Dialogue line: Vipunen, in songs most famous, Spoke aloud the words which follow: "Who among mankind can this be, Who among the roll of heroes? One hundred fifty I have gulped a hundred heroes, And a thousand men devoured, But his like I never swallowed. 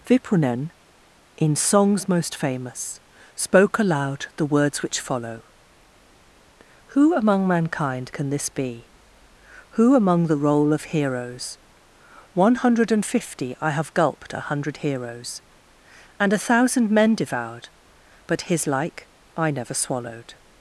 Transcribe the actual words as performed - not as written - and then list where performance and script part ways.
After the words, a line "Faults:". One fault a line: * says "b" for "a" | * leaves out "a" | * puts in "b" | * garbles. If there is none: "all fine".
Vipunen, in songs most famous, Spoke aloud the words which follow: "Who among mankind can this be, Who among the roll of heroes? One hundred and fifty I have gulped a hundred heroes, And a thousand men devoured, But his like I never swallowed.
Faults:
* puts in "and"